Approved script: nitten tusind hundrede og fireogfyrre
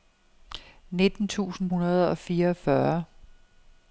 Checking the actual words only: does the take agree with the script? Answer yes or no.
yes